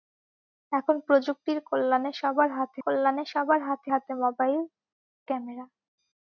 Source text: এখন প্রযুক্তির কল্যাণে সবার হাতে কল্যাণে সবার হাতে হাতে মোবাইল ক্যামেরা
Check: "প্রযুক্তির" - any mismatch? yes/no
no